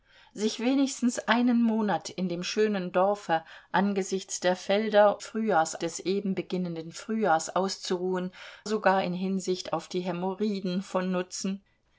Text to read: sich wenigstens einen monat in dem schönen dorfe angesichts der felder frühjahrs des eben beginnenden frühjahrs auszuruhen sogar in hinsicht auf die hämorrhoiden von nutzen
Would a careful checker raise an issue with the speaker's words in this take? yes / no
no